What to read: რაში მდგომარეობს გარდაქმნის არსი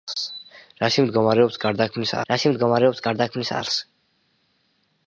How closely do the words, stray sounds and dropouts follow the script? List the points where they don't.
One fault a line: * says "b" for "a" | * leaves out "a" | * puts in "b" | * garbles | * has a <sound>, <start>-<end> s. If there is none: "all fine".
* puts in "რაში მდგომარეობს გარდაქმნის"